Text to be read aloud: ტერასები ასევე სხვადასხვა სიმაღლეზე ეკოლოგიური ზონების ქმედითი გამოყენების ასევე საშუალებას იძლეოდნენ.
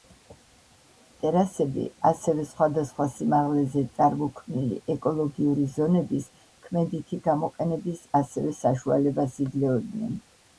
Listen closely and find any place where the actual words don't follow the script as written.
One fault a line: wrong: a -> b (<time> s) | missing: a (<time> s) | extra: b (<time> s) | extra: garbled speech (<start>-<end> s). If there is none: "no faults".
extra: წარმოქმნილი (4.0 s)